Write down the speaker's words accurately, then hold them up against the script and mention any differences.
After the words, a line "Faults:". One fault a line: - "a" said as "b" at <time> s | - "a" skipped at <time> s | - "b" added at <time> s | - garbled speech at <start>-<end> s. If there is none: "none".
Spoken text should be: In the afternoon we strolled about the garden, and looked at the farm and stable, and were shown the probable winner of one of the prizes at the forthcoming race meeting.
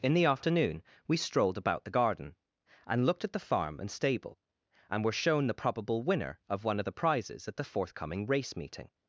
In the afternoon we strolled about the garden, and looked at the farm and stable, and were shown the probable winner of one of the prizes at the forthcoming race meeting.
Faults:
none